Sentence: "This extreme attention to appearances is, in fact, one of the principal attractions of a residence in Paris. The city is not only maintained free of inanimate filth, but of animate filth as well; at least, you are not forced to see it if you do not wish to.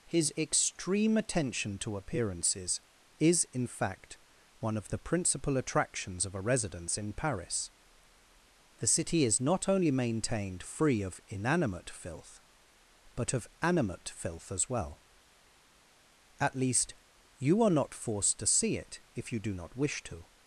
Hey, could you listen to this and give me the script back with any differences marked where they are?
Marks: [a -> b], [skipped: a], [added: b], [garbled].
["This -> His] extreme attention to appearances is, in fact, one of the principal attractions of a residence in Paris. The city is not only maintained free of inanimate filth, but of animate filth as well; at least, you are not forced to see it if you do not wish to.